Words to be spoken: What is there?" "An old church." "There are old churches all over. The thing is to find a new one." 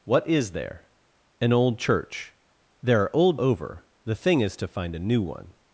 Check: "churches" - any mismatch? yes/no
yes